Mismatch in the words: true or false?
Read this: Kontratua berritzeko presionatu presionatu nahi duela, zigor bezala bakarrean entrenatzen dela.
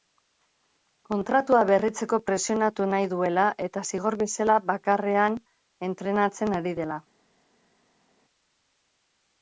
true